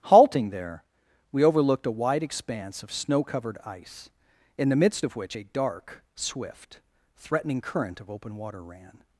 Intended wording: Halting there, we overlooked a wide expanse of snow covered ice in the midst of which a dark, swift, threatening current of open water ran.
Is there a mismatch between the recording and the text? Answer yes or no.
no